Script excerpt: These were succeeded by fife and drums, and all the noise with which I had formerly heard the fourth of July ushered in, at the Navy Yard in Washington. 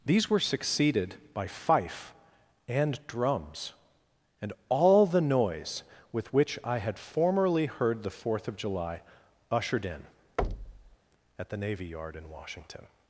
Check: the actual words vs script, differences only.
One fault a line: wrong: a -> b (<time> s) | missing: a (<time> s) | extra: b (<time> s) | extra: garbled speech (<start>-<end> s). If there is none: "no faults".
no faults